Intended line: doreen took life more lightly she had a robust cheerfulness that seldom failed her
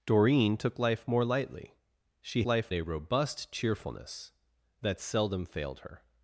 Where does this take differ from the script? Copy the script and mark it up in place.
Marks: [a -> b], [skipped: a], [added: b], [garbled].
doreen took life more lightly she [had -> life] a robust cheerfulness that seldom failed her